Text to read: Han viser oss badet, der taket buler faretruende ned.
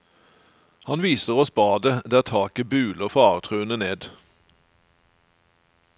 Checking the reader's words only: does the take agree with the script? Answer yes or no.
yes